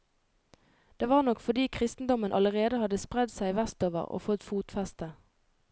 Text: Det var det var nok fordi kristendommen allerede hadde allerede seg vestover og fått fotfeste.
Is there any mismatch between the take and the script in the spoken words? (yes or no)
yes